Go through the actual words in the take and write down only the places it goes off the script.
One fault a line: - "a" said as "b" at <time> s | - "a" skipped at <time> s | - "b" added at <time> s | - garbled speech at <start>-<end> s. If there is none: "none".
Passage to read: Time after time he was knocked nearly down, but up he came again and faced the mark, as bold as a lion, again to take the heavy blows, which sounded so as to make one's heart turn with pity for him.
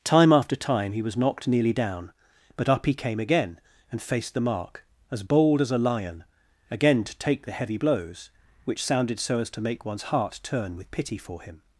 none